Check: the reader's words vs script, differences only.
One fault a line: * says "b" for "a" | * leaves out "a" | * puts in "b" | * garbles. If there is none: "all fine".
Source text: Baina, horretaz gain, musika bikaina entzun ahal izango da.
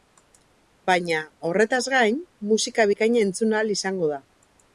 all fine